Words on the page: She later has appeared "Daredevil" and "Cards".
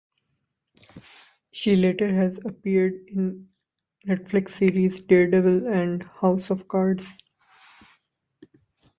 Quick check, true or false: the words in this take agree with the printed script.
false